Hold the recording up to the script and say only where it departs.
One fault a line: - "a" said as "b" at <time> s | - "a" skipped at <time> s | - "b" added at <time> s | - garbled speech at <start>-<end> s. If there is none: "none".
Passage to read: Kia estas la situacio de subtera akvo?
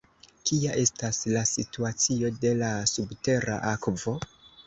- "la" added at 2.6 s